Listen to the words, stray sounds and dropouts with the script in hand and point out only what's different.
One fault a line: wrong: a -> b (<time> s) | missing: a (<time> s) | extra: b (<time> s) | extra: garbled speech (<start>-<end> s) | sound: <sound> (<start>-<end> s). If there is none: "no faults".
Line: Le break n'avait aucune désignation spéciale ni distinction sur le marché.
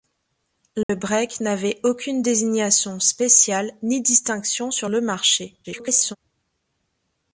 sound: dropout (0.8-0.9 s)
extra: garbled speech (5.6-6.2 s)